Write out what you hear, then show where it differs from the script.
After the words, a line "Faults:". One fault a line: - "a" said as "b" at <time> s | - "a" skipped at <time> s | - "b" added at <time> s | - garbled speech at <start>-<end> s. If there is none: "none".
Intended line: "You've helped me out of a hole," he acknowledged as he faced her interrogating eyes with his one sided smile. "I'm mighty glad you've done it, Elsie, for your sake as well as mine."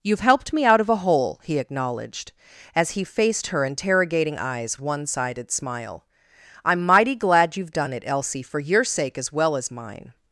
"You've helped me out of a hole," he acknowledged as he faced her interrogating eyes one sided smile. "I'm mighty glad you've done it, Elsie, for your sake as well as mine."
Faults:
- "with his" skipped at 4.8 s